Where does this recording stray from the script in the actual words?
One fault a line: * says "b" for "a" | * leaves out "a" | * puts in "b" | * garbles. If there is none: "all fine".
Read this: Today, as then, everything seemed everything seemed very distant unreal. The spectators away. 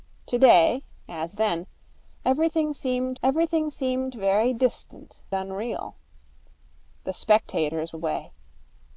all fine